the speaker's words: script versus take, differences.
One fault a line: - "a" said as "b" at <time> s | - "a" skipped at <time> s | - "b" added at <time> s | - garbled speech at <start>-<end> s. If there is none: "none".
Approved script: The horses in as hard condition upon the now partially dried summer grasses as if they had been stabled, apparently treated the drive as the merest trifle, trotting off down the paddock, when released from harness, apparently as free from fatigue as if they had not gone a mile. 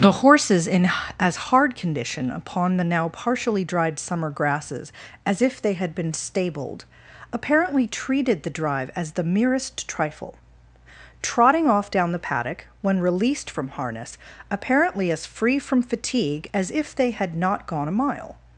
none